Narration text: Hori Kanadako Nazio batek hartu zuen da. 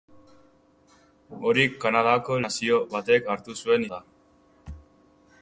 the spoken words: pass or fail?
pass